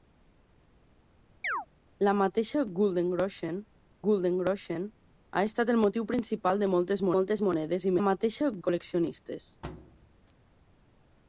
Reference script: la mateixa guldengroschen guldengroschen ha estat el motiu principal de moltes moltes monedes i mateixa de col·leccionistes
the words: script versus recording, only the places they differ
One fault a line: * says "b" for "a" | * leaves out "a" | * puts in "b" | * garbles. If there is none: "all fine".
all fine